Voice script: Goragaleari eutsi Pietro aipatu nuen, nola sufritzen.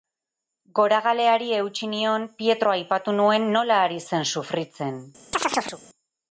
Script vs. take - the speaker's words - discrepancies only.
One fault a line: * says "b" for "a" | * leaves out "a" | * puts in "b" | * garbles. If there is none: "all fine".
* puts in "nion"
* puts in "ari zen"